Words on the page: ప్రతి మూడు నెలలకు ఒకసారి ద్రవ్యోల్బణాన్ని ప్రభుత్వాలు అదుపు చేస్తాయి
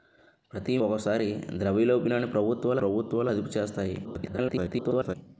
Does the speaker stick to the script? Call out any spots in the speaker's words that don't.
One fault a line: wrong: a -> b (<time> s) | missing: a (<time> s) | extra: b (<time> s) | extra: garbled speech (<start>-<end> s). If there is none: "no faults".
missing: మూడు నెలలకు (0.8 s)
extra: ప్రభుత్వాలు (2.8 s)
extra: garbled speech (4.0-5.2 s)